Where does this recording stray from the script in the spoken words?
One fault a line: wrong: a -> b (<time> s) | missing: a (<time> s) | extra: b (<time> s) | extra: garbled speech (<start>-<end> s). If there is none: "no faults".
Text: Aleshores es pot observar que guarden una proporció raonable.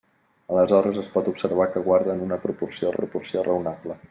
extra: proporció (3.0 s)